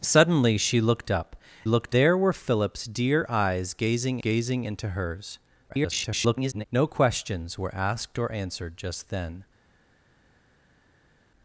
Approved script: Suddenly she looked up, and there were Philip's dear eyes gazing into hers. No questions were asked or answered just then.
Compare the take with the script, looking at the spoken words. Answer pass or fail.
fail